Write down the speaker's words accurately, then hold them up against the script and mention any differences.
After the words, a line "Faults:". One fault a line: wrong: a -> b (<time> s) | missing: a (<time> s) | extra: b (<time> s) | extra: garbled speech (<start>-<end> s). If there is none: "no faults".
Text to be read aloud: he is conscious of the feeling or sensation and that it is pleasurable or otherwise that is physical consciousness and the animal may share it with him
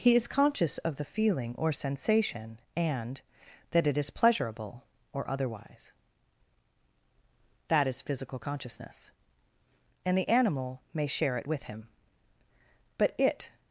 he is conscious of the feeling or sensation and that it is pleasurable or otherwise that is physical consciousness and the animal may share it with him but it
Faults:
extra: but it (13.0 s)